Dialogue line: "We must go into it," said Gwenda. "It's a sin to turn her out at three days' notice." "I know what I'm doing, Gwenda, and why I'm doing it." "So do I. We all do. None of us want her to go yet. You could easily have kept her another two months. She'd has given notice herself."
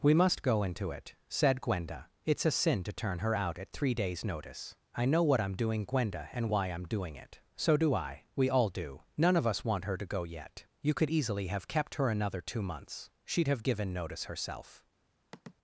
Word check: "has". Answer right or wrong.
wrong